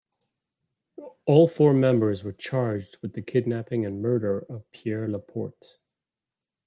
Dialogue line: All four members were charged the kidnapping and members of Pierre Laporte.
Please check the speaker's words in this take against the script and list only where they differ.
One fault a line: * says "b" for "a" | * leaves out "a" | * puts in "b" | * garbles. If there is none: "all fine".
* puts in "with"
* says "murder" for "members"